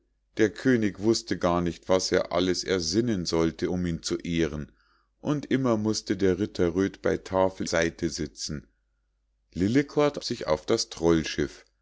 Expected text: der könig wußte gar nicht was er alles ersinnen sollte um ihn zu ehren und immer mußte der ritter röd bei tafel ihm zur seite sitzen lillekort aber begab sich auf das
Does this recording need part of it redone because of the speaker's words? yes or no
yes